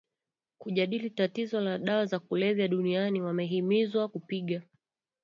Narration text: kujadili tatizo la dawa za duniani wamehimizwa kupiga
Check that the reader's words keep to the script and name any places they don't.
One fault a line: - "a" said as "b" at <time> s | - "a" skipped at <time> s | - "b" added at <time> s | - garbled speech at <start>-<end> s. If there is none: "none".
- "kulevya" added at 2.2 s